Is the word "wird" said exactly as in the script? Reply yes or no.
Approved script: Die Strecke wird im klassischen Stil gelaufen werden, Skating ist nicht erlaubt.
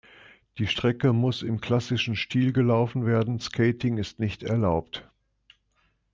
no